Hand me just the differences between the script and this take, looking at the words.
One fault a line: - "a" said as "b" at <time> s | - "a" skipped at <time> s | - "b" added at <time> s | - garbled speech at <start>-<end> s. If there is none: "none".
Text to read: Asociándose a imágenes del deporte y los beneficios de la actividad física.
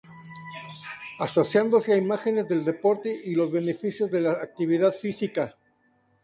none